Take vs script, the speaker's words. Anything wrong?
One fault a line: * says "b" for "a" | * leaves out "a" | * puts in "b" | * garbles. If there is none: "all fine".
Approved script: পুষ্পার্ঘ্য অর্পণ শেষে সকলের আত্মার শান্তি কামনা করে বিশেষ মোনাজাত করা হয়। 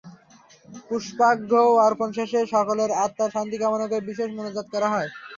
all fine